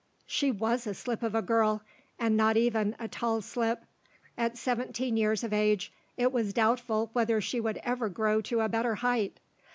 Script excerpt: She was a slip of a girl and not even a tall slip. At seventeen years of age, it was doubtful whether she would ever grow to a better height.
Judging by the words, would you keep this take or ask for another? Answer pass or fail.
pass